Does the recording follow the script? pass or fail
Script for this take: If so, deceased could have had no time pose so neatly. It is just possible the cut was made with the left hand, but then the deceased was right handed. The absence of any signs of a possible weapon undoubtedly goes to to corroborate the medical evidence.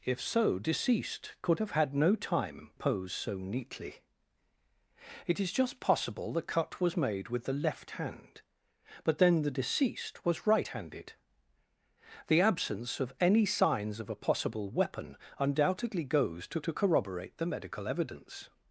pass